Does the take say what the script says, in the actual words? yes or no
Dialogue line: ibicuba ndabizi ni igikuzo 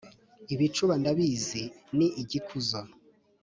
yes